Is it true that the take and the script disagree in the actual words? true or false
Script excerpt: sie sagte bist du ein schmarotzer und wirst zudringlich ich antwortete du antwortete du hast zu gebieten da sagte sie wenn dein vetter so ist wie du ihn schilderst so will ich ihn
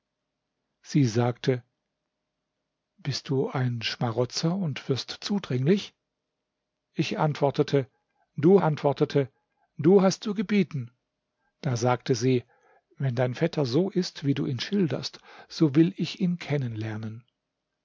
false